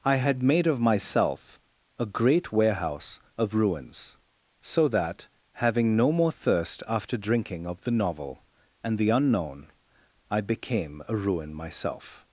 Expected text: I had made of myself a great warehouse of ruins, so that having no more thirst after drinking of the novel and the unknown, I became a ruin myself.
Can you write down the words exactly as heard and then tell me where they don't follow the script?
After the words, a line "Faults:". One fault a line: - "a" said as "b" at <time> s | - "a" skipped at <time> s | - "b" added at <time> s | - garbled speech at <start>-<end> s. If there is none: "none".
I had made of myself a great warehouse of ruins, so that having no more thirst after drinking of the novel and the unknown, I became a ruin myself.
Faults:
none